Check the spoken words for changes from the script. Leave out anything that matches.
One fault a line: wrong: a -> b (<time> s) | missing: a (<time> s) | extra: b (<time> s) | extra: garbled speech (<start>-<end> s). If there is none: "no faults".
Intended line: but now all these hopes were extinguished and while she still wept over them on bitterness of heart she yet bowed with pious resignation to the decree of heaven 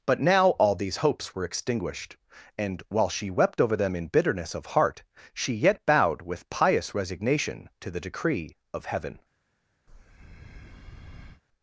missing: still (3.3 s)
wrong: on -> in (4.0 s)